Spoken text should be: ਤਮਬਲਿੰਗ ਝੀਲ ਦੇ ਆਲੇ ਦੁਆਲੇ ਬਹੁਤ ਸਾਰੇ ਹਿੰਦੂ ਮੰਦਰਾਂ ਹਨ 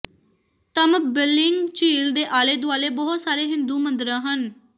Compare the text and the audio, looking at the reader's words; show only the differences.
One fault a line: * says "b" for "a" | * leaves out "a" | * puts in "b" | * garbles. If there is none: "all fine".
all fine